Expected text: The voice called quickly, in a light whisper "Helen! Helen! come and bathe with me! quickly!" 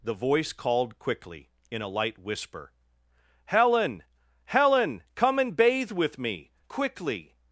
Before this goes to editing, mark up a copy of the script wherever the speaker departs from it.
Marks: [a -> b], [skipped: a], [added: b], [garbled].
The voice called quickly, in a light whisper "Helen! Helen! come and bathe with me! quickly!"